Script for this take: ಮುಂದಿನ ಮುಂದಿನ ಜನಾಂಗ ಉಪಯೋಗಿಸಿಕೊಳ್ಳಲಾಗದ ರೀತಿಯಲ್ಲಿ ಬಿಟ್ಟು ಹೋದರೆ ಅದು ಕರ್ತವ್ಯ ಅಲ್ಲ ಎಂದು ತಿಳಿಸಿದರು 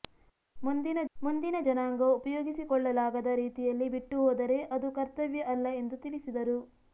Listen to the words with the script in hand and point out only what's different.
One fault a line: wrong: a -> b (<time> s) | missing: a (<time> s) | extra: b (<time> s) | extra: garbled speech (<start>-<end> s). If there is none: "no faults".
no faults